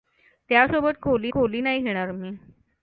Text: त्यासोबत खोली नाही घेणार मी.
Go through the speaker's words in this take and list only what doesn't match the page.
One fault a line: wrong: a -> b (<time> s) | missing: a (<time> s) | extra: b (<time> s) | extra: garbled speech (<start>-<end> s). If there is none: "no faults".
extra: खोली (1.3 s)